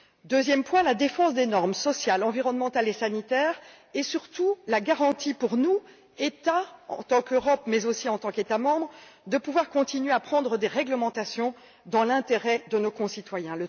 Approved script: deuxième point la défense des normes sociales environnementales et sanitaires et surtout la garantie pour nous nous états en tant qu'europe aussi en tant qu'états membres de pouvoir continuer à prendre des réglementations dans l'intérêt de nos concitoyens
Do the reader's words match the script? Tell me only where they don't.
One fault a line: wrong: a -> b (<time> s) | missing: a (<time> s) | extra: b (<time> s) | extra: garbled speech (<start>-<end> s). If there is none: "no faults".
missing: nous (5.8 s)
extra: mais (7.7 s)